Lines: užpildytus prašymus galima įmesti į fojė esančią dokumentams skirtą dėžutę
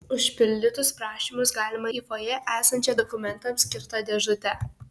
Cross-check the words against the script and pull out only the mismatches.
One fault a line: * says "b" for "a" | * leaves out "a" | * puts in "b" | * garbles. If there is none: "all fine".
* leaves out "įmesti"